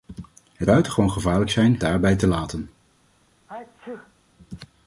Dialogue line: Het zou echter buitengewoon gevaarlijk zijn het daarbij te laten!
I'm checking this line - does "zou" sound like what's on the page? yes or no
no